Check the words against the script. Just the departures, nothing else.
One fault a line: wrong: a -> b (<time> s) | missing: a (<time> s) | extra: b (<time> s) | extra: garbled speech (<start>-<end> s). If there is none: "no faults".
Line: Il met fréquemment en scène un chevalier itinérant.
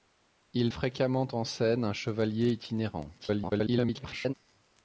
missing: met (0.7 s)
extra: garbled speech (3.2-4.3 s)